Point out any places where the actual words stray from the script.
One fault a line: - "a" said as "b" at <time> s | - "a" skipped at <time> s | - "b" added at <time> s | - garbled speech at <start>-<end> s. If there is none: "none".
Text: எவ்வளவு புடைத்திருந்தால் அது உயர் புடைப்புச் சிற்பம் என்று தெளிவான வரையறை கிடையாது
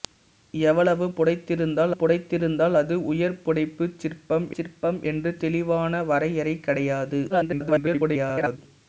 - "புடைத்திருந்தால்" added at 1.9 s
- "சிற்பம்" added at 4.6 s
- garbled speech at 7.3-8.6 s